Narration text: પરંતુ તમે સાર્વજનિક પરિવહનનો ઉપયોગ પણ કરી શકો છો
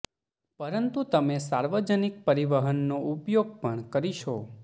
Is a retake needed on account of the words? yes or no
yes